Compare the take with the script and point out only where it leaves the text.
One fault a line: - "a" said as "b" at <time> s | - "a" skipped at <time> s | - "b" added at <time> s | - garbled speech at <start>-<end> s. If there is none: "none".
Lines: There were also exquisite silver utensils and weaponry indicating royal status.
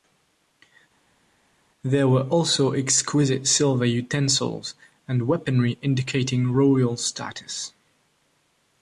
none